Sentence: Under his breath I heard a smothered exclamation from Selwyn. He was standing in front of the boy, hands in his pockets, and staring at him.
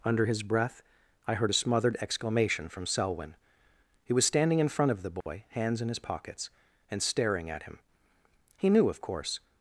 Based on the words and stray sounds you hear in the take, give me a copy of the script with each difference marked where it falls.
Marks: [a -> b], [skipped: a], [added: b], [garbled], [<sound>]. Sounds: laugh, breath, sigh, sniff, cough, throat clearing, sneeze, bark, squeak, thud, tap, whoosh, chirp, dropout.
Under his breath I heard a smothered exclamation from Selwyn. He was standing in front of the boy, [dropout] hands in his pockets, and staring at him. [added: He knew of course]